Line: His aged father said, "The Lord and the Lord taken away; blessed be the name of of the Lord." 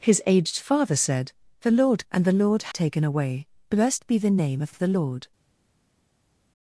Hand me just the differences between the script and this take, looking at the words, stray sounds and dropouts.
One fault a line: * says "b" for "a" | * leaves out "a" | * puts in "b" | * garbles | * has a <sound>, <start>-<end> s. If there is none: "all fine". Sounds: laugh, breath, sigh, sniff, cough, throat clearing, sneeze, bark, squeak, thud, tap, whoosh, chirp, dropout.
all fine